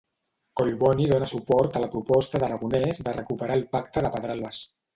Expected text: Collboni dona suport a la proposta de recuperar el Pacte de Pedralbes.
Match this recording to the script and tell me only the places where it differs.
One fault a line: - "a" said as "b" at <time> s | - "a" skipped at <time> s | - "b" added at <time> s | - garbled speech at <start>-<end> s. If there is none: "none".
- "d'Aragonès" added at 2.5 s